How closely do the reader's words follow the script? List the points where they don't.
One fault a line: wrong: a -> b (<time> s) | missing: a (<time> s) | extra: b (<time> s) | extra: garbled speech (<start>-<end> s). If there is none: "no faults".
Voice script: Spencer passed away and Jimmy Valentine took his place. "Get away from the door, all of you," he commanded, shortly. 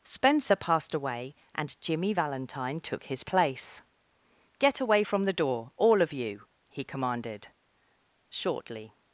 no faults